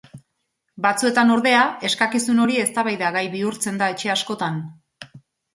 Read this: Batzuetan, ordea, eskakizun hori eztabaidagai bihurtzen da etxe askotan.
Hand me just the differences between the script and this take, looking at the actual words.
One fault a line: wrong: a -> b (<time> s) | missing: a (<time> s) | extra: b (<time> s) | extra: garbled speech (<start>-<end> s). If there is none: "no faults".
no faults